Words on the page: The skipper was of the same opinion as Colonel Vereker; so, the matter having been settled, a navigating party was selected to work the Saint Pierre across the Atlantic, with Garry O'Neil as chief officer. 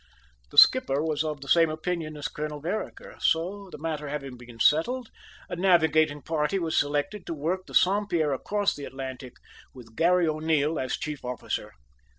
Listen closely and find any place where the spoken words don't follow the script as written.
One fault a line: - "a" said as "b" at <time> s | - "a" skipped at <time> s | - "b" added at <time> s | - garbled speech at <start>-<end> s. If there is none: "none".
none